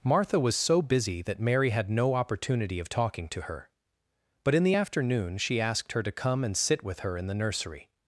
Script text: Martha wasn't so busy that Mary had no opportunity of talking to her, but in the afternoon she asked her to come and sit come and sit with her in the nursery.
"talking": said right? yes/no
yes